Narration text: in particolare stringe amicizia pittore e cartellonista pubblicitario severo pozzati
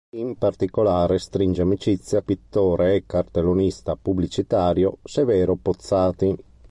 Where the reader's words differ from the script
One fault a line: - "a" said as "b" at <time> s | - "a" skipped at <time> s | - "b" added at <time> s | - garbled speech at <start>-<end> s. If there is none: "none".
none